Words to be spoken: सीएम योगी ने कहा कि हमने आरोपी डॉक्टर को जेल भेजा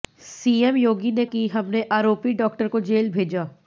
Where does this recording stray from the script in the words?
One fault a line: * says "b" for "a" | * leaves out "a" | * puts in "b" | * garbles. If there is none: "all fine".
* leaves out "कहा"